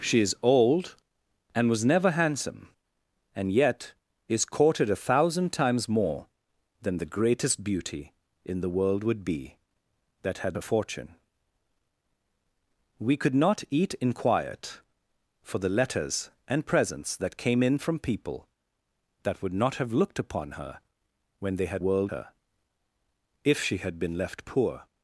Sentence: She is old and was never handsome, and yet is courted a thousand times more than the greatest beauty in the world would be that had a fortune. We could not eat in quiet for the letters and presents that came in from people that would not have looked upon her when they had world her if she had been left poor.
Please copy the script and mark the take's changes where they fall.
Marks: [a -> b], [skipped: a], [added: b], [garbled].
She is old and was never handsome, and yet is courted a thousand times more than the greatest beauty in the world would be that had a fortune. We could not eat in quiet for the letters and presents that came in from people that would not have looked upon her when they had world her if she had been left poor.